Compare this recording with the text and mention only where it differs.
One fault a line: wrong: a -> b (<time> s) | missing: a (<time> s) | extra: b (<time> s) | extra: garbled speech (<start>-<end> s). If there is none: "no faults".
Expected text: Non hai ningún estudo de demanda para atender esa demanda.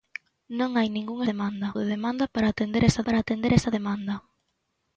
wrong: estudo -> demanda (1.3 s)
extra: para atender esa (3.0 s)